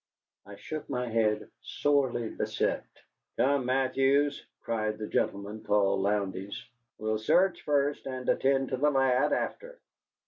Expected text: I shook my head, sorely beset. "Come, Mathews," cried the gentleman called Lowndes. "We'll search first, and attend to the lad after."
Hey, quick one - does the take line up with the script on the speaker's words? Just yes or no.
yes